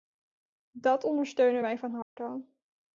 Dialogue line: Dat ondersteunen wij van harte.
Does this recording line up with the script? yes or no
yes